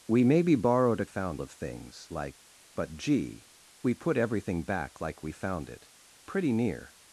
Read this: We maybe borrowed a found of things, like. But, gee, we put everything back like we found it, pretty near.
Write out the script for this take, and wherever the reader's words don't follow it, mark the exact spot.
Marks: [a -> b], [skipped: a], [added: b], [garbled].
We maybe borrowed a found of things, like. But, gee, we put everything back like we found it, pretty near.